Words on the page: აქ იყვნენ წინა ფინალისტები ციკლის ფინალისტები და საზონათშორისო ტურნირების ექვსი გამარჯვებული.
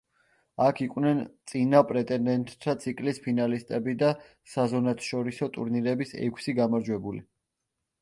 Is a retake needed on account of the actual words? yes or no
yes